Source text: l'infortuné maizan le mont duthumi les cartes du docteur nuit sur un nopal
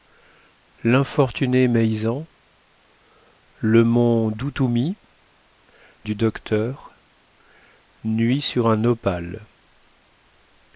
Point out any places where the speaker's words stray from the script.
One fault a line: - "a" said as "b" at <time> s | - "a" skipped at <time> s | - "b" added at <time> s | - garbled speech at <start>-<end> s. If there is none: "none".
- "les cartes" skipped at 5.0 s